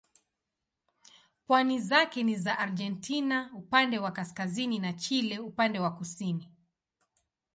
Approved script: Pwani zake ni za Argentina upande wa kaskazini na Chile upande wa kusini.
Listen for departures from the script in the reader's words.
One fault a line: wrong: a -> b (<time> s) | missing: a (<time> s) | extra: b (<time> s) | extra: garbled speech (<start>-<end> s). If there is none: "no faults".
no faults